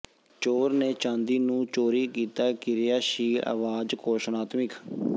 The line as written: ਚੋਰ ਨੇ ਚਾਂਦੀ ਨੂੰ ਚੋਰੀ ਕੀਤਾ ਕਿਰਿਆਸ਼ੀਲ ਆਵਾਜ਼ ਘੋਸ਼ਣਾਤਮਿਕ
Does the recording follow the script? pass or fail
pass